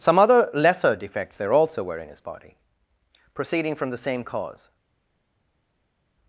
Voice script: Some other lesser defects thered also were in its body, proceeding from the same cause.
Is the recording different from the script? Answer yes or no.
yes